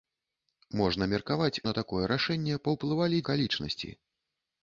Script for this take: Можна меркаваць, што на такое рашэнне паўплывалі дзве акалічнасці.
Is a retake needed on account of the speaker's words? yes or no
yes